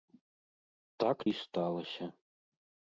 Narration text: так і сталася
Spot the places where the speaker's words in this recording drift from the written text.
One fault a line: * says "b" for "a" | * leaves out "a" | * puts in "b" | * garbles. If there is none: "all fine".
all fine